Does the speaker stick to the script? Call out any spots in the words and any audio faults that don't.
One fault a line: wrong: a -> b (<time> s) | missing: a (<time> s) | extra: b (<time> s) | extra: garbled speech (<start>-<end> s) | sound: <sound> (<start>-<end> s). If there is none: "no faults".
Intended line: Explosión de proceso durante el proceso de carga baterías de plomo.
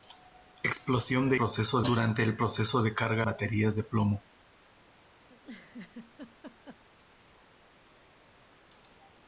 sound: laugh (5.3-6.8 s)